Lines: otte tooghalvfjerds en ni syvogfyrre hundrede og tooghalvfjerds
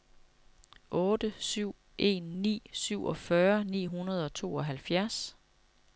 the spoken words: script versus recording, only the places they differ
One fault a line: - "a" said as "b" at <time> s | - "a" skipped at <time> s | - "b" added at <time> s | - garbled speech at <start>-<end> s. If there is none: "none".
- "tooghalvfjerds" said as "syv" at 1.5 s
- "ni" added at 3.6 s